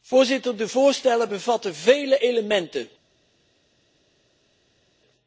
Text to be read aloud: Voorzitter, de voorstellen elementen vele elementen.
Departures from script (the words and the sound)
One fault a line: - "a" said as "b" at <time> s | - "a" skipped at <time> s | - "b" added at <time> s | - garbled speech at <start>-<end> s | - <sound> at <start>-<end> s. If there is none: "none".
- "elementen" said as "bevatten" at 1.3 s